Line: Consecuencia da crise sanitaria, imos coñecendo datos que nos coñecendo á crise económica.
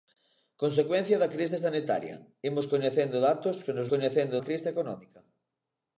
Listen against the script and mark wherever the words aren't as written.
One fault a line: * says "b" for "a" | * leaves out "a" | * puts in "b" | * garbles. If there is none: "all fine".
all fine